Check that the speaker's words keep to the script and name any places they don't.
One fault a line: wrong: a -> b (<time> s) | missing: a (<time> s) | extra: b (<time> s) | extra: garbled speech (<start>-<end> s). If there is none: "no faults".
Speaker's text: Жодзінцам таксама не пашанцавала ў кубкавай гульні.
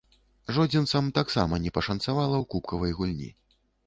no faults